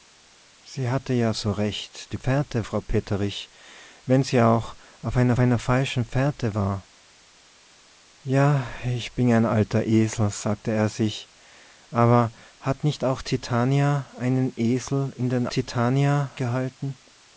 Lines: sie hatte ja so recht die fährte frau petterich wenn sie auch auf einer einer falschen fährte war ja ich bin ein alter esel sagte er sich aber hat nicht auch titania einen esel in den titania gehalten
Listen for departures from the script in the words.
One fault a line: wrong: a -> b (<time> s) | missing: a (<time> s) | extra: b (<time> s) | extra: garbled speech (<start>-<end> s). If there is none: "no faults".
no faults